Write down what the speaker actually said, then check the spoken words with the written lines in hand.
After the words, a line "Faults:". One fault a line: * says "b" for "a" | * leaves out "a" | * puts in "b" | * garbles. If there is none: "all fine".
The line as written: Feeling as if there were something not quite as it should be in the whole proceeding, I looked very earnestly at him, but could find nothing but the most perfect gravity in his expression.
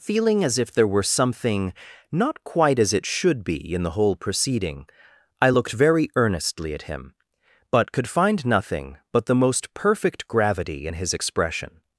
Feeling as if there were something not quite as it should be in the whole proceeding, I looked very earnestly at him, but could find nothing but the most perfect gravity in his expression.
Faults:
all fine